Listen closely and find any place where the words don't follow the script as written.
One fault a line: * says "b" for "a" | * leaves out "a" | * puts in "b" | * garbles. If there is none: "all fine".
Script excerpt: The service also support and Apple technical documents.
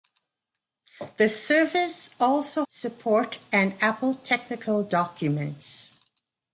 all fine